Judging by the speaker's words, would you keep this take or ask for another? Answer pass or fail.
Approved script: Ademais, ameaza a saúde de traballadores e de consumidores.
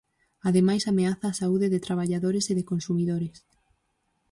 pass